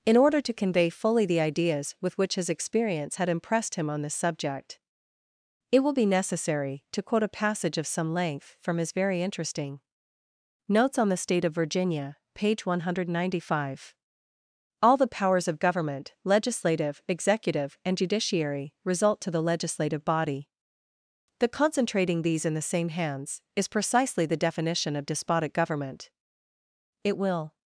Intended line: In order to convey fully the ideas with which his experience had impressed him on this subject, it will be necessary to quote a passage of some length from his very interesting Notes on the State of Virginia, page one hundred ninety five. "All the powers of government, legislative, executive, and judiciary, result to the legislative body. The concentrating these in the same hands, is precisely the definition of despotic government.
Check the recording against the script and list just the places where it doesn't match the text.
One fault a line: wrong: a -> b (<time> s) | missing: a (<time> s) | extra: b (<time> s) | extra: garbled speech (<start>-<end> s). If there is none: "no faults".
extra: It will (27.0 s)